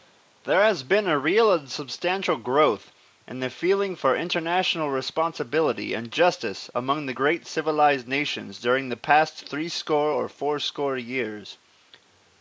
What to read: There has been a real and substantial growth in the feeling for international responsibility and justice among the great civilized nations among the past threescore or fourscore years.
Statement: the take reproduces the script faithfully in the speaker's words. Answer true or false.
false